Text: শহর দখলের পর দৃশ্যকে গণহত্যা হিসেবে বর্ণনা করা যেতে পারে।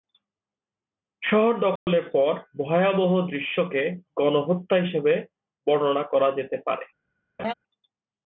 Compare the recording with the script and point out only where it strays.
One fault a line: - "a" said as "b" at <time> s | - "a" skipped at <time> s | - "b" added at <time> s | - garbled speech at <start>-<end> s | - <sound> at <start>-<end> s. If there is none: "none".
- dropout at 1.8-1.9 s
- "ভয়াবহ" added at 2.6 s
- laugh at 7.4-7.5 s